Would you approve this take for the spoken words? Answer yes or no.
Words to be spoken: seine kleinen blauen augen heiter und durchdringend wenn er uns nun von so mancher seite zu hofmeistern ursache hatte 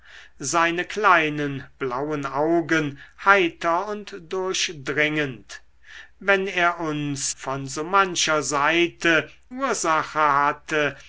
no